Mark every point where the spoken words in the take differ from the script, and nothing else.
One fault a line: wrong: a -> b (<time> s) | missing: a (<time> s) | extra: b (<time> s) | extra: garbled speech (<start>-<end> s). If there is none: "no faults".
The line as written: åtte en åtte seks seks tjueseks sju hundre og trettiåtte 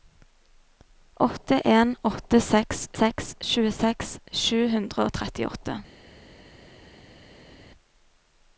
no faults